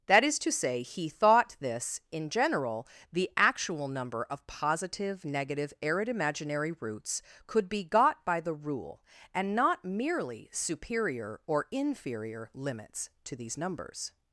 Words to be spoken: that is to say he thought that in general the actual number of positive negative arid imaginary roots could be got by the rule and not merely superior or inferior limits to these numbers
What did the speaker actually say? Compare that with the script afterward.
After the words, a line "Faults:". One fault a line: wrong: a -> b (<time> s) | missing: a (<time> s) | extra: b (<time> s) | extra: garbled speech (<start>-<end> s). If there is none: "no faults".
that is to say he thought this in general the actual number of positive negative arid imaginary roots could be got by the rule and not merely superior or inferior limits to these numbers
Faults:
wrong: that -> this (1.6 s)